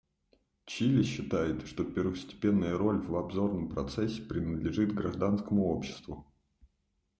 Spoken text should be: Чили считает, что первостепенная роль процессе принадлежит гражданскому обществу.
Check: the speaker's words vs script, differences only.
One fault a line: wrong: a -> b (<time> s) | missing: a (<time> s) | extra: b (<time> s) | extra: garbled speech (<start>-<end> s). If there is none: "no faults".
extra: в обзорном (3.0 s)